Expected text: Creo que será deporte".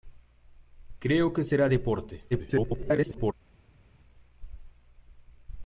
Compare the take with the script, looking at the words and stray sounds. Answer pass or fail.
fail